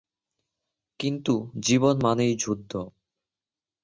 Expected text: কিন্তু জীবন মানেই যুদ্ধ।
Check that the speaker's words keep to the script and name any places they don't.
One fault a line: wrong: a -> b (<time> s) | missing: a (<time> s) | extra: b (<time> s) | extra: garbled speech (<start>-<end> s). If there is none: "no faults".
no faults